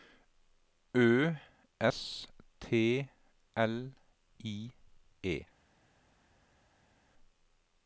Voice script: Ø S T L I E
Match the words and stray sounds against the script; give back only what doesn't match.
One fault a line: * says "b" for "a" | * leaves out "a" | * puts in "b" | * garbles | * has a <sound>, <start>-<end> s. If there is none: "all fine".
all fine